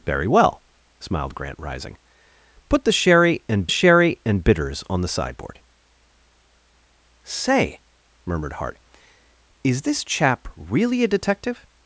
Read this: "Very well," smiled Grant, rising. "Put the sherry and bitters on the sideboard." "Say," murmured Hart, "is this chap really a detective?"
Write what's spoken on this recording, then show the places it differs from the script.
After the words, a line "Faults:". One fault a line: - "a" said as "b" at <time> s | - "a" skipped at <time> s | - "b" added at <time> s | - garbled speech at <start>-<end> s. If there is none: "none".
"Very well," smiled Grant, rising. "Put the sherry and sherry and bitters on the sideboard." "Say," murmured Hart, "is this chap really a detective?"
Faults:
- "sherry and" added at 3.7 s